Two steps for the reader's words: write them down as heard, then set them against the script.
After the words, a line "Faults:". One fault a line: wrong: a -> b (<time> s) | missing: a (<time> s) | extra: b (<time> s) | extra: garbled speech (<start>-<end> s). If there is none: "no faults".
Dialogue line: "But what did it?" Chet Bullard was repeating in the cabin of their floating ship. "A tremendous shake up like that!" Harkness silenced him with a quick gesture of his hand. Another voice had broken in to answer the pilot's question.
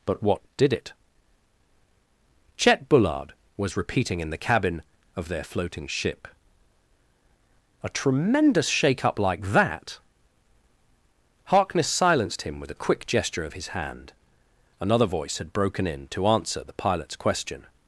"But what did it?" Chet Bullard was repeating in the cabin of their floating ship. "A tremendous shake up like that!" Harkness silenced him with a quick gesture of his hand. Another voice had broken in to answer the pilot's question.
Faults:
no faults